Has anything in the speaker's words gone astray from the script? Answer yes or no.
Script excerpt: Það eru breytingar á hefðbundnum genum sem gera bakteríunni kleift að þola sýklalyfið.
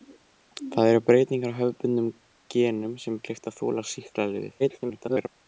yes